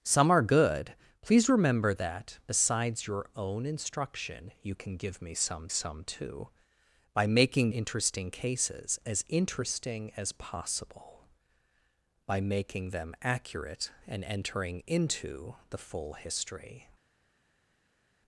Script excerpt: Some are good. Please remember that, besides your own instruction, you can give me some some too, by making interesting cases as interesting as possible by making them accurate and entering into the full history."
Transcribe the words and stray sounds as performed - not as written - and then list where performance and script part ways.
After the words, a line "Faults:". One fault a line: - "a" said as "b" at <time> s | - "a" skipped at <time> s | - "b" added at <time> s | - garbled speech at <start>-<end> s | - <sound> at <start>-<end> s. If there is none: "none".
Some are good. Please remember that, besides your own instruction, you can give me some some too, by making interesting cases as interesting as possible by making them accurate and entering into the full history."
Faults:
none